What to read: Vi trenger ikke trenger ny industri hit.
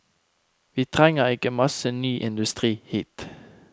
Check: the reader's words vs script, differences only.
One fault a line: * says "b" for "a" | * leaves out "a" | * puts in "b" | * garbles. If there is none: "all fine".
* says "masse" for "trenger"